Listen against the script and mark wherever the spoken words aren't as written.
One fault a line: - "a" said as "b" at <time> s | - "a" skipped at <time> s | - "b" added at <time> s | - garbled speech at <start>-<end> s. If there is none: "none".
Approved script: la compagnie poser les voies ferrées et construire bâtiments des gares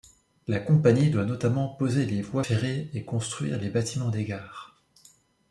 - "doit notamment" added at 1.1 s
- "les" added at 3.6 s